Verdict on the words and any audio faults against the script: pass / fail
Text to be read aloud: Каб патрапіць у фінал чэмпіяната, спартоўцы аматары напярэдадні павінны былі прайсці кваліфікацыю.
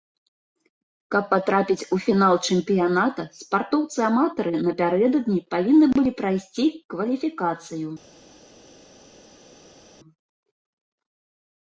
pass